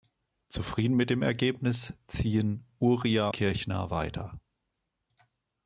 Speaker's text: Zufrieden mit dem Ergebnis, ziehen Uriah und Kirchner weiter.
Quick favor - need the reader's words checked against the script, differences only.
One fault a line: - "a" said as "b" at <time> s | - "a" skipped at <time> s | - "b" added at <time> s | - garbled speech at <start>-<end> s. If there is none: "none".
- "und" skipped at 3.3 s